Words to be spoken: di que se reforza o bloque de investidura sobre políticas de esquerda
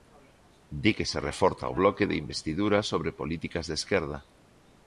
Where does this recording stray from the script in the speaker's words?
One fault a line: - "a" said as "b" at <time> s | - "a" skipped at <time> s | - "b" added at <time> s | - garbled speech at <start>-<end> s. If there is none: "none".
none